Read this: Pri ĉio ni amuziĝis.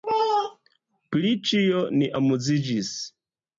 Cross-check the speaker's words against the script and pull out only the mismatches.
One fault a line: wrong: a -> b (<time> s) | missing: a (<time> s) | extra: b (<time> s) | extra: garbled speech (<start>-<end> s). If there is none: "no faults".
no faults